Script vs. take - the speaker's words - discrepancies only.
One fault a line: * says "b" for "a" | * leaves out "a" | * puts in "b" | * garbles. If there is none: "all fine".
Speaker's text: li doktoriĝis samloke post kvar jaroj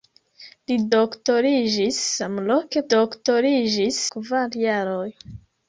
* says "doktoriĝis" for "post"